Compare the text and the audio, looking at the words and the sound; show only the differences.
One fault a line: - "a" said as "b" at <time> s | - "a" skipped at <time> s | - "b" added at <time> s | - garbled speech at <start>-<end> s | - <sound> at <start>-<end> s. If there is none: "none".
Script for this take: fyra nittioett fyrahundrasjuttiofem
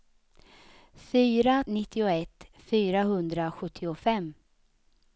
none